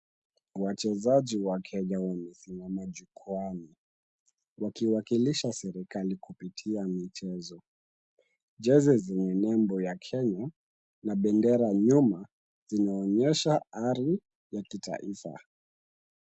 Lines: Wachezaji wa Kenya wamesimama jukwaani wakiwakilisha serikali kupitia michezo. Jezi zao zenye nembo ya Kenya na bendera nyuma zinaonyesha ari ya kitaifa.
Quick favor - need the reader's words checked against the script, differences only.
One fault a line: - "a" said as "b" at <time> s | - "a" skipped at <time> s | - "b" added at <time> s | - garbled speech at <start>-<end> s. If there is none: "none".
- "zao" skipped at 9.0 s